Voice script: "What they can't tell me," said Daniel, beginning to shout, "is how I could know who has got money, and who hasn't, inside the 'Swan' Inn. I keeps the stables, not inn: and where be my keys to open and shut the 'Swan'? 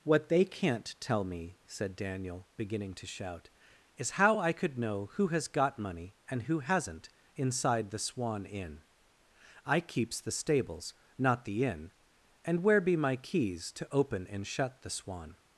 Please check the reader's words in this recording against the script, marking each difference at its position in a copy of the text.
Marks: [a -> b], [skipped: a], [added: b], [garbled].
"What they can't tell me," said Daniel, beginning to shout, "is how I could know who has got money, and who hasn't, inside the 'Swan' Inn. I keeps the stables, not [added: the] inn: and where be my keys to open and shut the 'Swan'?